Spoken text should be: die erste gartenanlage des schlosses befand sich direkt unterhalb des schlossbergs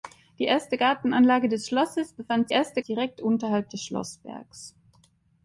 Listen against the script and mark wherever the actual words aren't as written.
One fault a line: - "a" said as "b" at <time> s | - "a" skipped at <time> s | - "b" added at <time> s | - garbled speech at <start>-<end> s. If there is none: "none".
- "sich" said as "erste" at 2.5 s